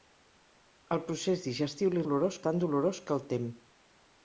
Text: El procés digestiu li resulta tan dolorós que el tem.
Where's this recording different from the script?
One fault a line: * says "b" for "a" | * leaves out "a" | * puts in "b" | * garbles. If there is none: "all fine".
* says "dolorós" for "resulta"